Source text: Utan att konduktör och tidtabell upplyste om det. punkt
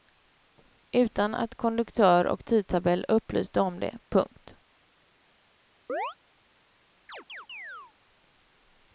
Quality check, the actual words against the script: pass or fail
pass